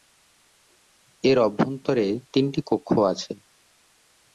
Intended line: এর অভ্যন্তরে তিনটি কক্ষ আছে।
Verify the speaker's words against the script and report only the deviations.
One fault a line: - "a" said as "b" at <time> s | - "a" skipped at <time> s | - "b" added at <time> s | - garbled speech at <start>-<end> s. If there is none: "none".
none